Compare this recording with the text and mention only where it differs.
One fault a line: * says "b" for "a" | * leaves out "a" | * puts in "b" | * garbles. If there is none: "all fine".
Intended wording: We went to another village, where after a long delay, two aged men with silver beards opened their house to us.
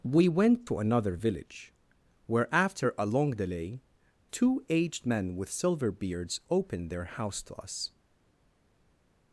all fine